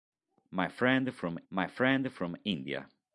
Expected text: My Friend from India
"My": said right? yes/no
yes